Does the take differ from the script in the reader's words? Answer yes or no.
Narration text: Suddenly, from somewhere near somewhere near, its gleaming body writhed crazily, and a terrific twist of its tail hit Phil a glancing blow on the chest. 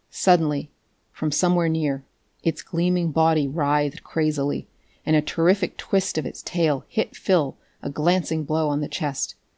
yes